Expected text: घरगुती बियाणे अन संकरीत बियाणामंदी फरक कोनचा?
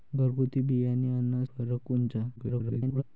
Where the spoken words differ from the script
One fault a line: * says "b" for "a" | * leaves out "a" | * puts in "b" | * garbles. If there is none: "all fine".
* leaves out "संकरीत बियाणामंदी"
* garbles